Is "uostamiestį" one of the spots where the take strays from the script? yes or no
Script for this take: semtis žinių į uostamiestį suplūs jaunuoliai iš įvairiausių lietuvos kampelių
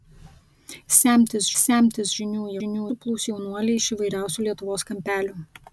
yes